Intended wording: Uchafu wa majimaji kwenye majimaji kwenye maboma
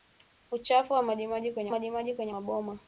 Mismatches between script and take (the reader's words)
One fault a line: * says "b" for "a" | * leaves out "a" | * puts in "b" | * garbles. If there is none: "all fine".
all fine